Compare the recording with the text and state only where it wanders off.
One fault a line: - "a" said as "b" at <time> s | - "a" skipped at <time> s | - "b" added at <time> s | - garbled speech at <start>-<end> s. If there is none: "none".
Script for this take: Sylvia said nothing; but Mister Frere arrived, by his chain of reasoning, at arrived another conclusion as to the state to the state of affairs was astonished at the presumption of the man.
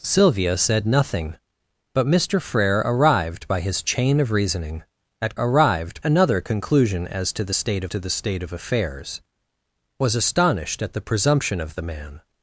none